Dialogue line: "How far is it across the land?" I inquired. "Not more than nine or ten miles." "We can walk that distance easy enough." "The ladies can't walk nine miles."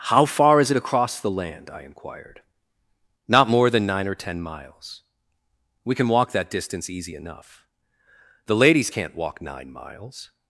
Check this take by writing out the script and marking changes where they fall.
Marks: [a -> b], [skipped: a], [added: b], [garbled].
"How far is it across the land?" I inquired. "Not more than nine or ten miles." "We can walk that distance easy enough." "The ladies can't walk nine miles."